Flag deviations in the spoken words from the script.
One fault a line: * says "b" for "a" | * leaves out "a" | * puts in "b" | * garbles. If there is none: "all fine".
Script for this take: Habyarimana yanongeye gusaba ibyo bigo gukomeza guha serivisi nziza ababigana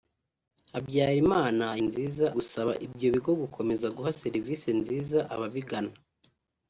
* says "nziza" for "yanongeye"